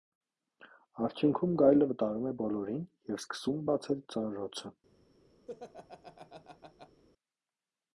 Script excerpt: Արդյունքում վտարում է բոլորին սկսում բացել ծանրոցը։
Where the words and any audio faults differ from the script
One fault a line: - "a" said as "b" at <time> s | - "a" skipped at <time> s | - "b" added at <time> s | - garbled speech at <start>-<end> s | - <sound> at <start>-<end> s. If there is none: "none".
- "գայլը" added at 1.6 s
- "և" added at 3.1 s
- laugh at 5.5-7.0 s